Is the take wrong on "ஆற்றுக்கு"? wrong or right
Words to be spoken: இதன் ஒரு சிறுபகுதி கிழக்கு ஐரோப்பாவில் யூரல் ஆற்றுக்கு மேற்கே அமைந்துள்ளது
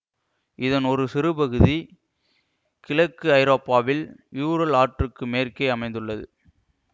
right